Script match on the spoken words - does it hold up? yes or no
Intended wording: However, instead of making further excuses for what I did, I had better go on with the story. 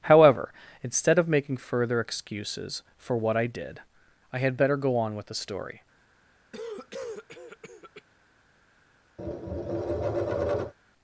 yes